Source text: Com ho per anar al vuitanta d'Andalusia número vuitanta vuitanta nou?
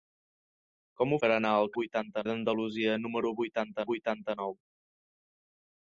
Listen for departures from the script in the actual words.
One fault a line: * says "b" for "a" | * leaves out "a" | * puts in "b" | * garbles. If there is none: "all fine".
all fine